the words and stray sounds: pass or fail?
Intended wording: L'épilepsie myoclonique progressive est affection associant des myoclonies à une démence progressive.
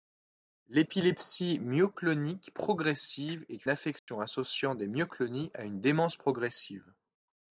fail